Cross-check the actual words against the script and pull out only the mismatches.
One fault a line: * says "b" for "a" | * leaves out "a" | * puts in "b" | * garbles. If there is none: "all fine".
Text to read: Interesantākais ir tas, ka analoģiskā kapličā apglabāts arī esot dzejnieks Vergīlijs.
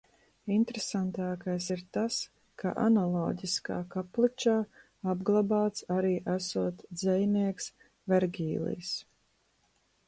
all fine